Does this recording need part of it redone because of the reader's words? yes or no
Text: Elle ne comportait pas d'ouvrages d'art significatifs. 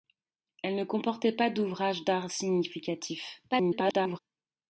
yes